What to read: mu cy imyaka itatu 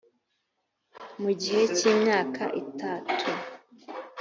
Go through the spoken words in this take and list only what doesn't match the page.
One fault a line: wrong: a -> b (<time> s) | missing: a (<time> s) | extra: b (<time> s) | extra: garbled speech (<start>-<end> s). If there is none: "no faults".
extra: gihe (1.4 s)